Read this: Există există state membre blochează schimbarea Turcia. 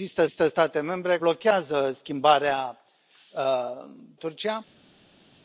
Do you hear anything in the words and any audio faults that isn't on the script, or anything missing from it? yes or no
no